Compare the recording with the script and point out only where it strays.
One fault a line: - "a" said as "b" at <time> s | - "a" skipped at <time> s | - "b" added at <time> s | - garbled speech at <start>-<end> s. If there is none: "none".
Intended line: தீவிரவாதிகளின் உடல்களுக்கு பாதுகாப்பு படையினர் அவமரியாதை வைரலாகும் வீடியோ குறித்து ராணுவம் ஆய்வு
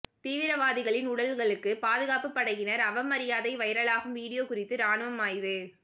none